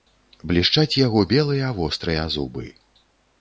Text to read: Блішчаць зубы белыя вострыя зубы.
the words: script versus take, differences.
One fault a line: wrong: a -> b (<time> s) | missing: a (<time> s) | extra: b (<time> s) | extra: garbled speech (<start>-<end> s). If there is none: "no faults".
wrong: зубы -> яго (1.0 s)